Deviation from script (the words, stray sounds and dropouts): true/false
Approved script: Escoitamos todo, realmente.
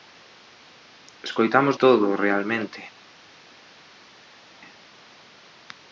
false